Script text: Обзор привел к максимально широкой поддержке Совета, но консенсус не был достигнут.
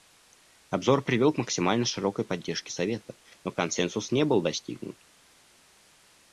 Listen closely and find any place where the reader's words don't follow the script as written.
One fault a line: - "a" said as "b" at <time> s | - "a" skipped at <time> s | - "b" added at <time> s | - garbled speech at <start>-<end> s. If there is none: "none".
none